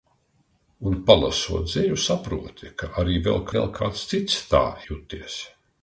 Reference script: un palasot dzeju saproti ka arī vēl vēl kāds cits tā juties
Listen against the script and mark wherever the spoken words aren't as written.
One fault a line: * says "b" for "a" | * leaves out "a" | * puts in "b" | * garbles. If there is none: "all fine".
all fine